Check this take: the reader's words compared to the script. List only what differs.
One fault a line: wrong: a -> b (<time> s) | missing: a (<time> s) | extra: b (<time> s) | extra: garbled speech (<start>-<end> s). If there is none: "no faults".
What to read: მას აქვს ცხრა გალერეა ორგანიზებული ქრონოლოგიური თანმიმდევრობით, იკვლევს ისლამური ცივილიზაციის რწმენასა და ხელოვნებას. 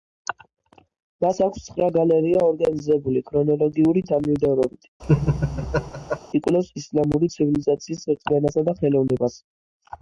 no faults